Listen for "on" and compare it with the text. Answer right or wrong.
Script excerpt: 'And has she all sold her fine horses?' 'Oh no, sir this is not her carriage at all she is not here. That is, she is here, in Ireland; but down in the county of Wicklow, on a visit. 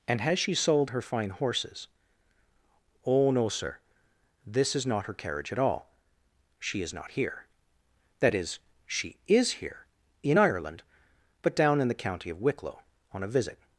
right